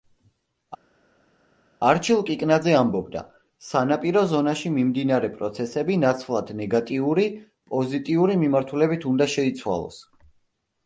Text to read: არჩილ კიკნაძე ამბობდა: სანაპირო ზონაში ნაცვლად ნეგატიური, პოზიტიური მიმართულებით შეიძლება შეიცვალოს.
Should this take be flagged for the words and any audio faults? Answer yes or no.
yes